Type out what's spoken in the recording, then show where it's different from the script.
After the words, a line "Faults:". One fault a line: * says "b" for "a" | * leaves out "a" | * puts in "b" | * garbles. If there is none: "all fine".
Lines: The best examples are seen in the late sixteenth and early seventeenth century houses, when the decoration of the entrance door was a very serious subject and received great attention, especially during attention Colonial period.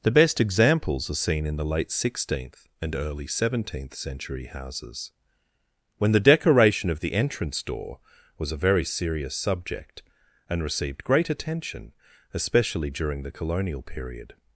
The best examples are seen in the late sixteenth and early seventeenth century houses, when the decoration of the entrance door was a very serious subject and received great attention, especially during the Colonial period.
Faults:
* says "the" for "attention"